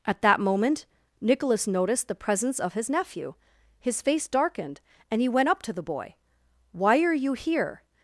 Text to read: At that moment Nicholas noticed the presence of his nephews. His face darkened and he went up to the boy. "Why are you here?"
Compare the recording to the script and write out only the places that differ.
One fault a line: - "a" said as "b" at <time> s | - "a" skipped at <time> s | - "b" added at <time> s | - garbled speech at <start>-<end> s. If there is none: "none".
- "nephews" said as "nephew" at 2.9 s